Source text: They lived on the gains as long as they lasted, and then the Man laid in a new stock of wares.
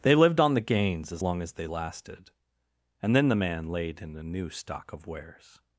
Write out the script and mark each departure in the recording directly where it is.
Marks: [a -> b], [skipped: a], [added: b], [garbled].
They lived on the gains as long as they lasted, and then the Man laid in a new stock of wares.